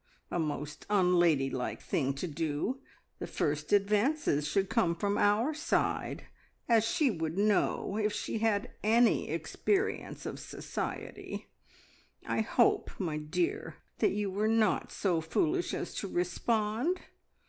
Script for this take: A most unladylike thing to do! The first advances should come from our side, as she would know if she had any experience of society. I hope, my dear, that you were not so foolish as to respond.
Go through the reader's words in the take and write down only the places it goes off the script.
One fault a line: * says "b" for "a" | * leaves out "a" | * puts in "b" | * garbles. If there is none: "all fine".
all fine